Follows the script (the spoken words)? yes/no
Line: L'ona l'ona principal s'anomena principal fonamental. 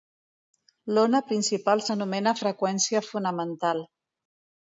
no